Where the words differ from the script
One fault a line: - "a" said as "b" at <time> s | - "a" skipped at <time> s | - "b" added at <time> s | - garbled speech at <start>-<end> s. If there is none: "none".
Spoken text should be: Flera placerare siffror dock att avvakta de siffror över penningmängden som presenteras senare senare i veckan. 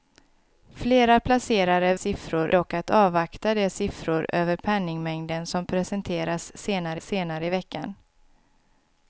none